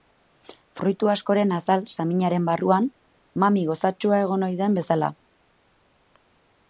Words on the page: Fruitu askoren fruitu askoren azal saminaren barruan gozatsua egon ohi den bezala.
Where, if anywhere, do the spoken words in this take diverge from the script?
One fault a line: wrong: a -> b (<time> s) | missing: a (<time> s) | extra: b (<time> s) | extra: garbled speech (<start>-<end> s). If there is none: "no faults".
missing: fruitu askoren (1.5 s)
extra: mami (3.4 s)